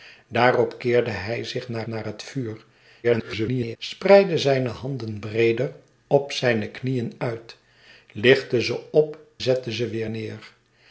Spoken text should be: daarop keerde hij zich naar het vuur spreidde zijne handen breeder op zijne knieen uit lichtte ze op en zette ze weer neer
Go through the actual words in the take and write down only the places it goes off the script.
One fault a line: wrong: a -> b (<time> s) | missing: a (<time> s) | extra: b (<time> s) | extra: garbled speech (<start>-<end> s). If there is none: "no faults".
extra: naar (1.9 s)
extra: garbled speech (3.0-3.8 s)
missing: en (9.2 s)